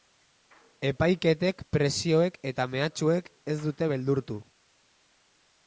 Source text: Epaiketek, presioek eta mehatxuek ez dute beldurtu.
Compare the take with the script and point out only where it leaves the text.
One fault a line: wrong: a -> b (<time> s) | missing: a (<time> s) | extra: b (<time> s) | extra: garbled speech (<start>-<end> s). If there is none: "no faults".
no faults